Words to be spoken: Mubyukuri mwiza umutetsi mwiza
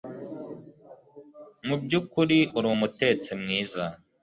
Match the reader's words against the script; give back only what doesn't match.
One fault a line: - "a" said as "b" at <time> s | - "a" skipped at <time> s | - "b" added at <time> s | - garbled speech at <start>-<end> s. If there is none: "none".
- "mwiza" said as "uri" at 2.6 s